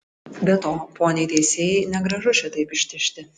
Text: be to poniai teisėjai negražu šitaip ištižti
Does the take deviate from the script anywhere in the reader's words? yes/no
no